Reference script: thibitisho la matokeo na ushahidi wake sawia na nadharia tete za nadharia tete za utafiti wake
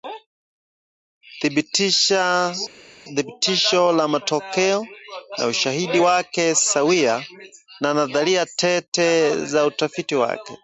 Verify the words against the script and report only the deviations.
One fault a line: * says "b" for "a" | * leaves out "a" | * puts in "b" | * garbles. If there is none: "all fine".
* leaves out "nadharia tete za"